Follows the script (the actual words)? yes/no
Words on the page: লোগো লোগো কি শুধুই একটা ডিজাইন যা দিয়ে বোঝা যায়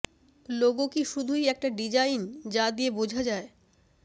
no